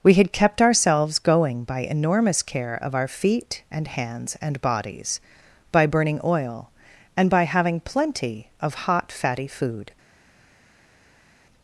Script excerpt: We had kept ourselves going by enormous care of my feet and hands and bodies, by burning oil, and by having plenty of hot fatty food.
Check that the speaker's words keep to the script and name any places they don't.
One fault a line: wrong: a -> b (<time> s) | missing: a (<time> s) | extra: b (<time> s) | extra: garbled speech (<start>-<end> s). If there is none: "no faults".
wrong: my -> our (3.0 s)